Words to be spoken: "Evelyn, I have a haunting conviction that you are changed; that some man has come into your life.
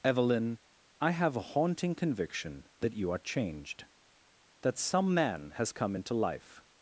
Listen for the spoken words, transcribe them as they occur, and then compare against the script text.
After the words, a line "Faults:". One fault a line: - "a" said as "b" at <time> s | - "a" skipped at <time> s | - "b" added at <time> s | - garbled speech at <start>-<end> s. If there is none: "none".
"Evelyn, I have a haunting conviction that you are changed; that some man has come into life.
Faults:
- "your" skipped at 6.1 s